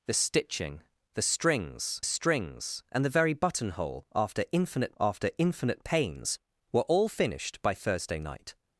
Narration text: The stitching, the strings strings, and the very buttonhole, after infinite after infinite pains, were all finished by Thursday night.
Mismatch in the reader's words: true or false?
false